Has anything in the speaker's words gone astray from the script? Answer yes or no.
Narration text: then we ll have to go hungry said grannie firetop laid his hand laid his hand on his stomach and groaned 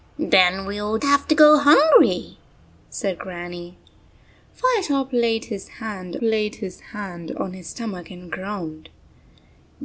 no